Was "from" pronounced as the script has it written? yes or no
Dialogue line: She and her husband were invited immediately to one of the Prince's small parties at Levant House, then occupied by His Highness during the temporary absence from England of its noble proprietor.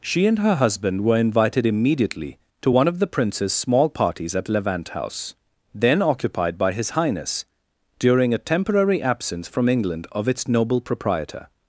yes